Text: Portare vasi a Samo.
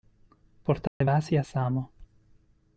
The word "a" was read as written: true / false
true